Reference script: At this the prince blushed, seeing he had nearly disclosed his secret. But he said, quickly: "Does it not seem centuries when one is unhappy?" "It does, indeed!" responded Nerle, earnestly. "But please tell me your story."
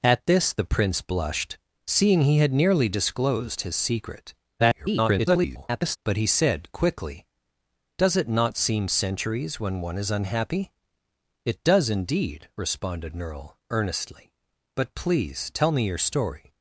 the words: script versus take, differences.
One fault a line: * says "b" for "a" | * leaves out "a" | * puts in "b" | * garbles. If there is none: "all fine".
* garbles